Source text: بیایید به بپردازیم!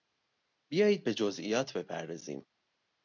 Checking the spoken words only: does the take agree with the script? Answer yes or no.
no